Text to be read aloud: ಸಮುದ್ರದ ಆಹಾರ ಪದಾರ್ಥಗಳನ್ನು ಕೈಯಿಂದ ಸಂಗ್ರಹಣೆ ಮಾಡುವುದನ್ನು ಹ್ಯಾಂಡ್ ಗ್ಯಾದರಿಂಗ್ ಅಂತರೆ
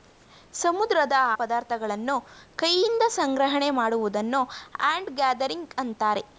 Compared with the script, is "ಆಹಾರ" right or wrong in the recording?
wrong